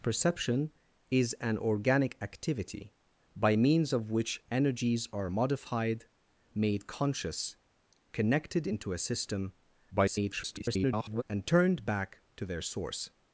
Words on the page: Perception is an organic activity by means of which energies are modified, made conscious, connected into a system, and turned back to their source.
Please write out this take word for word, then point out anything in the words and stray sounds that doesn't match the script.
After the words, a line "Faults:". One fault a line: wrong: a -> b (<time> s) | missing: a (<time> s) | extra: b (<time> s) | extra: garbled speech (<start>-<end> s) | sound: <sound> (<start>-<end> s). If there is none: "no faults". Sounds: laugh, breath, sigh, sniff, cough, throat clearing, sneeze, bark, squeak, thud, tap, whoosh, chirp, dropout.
Perception is an organic activity by means of which energies are modified, made conscious, connected into a system, [garbled] and turned back to their source.
Faults:
extra: garbled speech (9.9-11.2 s)